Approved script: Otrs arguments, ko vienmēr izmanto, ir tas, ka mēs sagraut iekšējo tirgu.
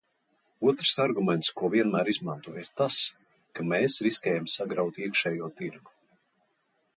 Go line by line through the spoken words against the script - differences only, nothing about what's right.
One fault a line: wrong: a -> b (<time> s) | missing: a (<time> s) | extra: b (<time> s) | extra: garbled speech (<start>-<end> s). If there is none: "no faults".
extra: riskējam (4.1 s)